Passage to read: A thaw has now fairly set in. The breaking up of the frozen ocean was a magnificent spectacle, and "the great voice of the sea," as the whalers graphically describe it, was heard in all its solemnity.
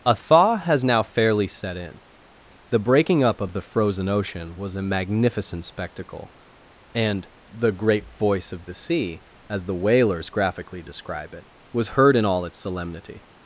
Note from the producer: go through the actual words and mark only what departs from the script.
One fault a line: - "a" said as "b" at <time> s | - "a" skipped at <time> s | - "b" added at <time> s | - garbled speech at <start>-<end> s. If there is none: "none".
none